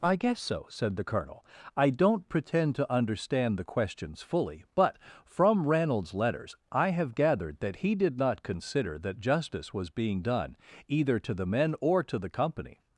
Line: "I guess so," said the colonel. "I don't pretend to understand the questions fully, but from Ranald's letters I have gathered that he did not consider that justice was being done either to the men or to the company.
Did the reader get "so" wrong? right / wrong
right